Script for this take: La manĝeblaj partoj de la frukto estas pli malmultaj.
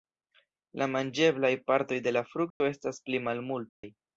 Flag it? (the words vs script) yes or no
no